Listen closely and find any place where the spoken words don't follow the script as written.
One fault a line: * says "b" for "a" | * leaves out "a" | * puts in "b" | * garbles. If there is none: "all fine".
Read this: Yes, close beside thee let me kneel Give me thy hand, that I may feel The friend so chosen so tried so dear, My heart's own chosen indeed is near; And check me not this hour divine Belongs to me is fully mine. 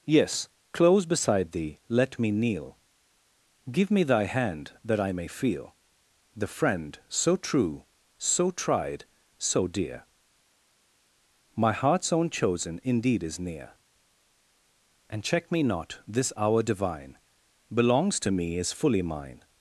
* says "true" for "chosen"